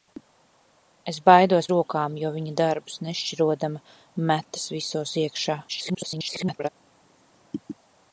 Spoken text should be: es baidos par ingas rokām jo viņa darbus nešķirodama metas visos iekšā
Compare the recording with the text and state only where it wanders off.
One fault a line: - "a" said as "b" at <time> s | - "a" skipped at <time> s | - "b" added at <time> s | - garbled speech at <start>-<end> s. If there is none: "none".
- "par ingas" skipped at 1.7 s
- garbled speech at 5.7-6.7 s